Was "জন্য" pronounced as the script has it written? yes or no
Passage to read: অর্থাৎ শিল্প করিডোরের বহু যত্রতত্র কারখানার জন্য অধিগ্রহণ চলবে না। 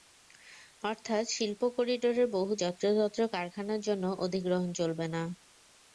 yes